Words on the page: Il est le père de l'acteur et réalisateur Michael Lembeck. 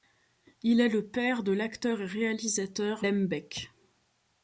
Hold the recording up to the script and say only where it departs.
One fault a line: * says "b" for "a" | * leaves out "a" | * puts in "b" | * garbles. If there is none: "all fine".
* leaves out "Michael"